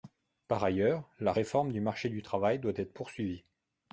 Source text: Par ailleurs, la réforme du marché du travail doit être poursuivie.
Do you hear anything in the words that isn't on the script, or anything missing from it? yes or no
no